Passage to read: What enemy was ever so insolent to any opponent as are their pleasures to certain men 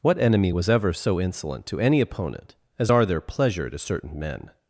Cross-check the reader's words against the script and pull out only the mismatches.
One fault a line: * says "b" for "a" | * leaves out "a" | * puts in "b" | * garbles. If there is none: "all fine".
* says "pleasure" for "pleasures"